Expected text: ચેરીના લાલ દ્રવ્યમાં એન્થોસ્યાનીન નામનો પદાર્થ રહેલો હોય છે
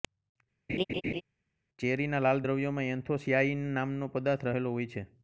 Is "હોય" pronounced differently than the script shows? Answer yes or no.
no